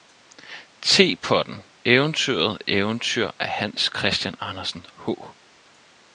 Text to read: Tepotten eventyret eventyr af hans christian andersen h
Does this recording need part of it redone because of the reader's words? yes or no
no